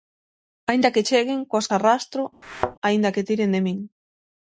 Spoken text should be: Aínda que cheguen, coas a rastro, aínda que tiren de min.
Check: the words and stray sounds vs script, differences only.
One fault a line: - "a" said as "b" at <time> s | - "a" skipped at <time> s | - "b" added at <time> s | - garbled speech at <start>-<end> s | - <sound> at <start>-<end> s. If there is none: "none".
- thud at 2.4-2.8 s